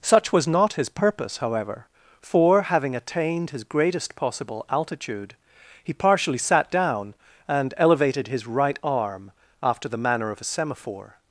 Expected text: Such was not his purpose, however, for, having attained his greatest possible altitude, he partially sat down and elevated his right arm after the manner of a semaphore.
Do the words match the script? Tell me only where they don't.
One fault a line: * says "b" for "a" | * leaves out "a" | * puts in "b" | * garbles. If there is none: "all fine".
all fine